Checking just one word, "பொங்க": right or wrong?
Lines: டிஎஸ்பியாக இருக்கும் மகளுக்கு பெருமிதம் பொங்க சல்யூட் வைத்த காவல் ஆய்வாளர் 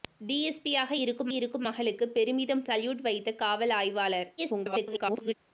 wrong